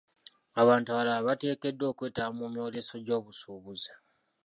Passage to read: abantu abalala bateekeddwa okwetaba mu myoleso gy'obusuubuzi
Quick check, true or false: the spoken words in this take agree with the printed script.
true